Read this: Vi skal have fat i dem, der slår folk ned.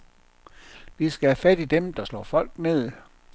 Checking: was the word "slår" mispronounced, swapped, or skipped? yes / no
no